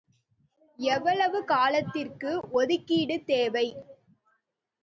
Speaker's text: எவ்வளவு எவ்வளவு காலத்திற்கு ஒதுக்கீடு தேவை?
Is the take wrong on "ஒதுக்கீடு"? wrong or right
right